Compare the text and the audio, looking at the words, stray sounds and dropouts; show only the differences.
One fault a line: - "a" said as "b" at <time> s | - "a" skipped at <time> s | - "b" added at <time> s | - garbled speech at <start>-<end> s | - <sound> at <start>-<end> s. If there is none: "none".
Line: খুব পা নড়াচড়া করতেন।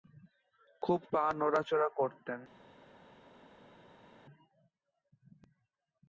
none